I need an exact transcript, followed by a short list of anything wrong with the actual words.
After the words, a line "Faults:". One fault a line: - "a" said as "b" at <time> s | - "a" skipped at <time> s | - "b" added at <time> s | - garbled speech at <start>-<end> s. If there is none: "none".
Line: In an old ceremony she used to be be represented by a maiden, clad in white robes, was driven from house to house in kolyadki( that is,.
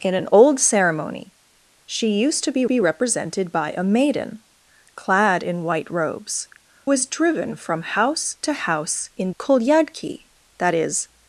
In an old ceremony she used to be be represented by a maiden, clad in white robes, was driven from house to house in kolyadki( that is,.
Faults:
none